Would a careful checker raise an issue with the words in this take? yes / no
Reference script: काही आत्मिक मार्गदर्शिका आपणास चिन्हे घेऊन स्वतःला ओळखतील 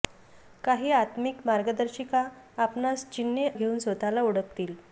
no